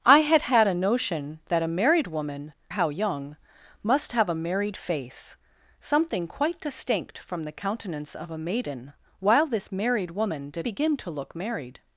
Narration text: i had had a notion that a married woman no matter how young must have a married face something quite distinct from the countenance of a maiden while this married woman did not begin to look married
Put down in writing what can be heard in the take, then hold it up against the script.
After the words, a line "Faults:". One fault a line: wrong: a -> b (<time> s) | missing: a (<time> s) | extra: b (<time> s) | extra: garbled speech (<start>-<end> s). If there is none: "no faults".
i had had a notion that a married woman how young must have a married face something quite distinct from the countenance of a maiden while this married woman did begin to look married
Faults:
missing: no matter (2.5 s)
missing: not (10.7 s)